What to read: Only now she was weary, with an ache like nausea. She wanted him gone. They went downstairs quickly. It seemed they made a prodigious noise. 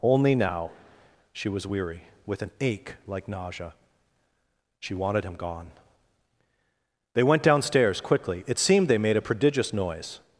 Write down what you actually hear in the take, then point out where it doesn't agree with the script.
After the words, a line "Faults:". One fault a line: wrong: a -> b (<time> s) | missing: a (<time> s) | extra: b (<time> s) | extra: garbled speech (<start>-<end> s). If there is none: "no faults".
Only now she was weary, with an ache like nausea. She wanted him gone. They went downstairs quickly. It seemed they made a prodigious noise.
Faults:
no faults